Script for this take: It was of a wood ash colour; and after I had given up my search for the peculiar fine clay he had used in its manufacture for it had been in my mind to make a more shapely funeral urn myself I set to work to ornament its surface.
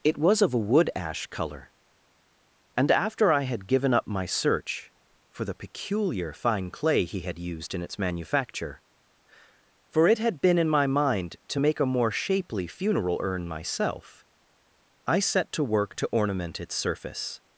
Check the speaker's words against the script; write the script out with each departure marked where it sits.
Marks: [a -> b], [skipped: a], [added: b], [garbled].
It was of a wood ash colour; and after I had given up my search for the peculiar fine clay he had used in its manufacture for it had been in my mind to make a more shapely funeral urn myself I set to work to ornament its surface.